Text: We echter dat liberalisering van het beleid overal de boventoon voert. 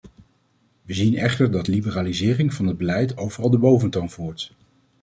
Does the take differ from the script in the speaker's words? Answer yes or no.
yes